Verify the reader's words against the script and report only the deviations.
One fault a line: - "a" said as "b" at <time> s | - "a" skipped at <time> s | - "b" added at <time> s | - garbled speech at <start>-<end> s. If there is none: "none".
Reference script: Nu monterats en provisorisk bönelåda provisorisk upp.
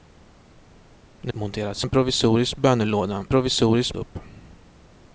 none